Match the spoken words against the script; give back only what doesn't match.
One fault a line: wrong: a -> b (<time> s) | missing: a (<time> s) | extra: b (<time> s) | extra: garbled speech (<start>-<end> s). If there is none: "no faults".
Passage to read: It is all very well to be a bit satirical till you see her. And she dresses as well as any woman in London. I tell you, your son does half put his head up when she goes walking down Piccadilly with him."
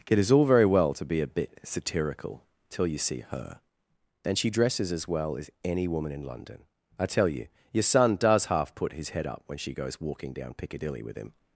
no faults